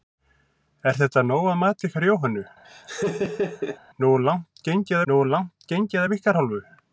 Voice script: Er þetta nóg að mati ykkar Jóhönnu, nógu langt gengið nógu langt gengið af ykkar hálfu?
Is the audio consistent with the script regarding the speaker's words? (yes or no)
yes